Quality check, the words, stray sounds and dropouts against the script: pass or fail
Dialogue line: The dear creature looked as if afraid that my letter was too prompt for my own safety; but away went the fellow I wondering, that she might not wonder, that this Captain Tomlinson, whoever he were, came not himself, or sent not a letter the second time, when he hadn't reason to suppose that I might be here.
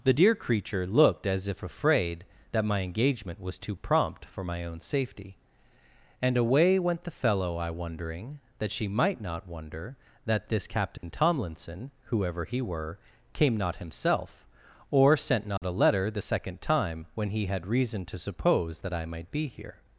fail